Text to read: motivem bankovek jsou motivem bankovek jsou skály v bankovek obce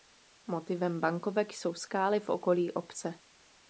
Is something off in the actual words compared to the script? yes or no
yes